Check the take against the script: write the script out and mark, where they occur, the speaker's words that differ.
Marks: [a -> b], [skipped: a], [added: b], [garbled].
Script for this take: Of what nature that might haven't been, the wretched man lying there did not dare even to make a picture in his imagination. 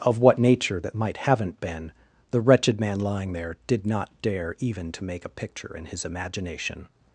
Of what nature that might haven't been, the wretched man lying there did not dare even to make a picture in his imagination.